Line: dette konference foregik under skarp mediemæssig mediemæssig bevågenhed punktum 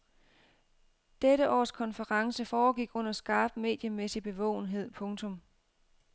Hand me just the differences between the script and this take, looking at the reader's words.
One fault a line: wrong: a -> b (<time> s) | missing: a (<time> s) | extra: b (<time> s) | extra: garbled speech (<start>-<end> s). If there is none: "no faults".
extra: års (1.5 s)
missing: mediemæssig (4.2 s)